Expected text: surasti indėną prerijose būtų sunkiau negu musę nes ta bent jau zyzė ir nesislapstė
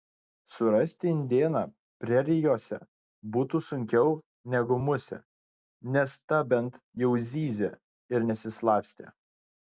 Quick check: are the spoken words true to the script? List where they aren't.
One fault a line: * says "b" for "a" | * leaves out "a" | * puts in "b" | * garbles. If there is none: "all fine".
all fine